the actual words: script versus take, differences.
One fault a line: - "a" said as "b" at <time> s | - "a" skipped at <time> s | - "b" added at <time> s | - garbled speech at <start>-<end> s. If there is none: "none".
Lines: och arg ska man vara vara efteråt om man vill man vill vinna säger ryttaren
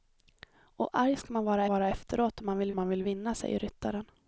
none